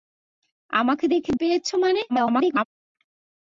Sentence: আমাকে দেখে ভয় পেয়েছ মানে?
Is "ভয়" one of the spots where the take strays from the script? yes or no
yes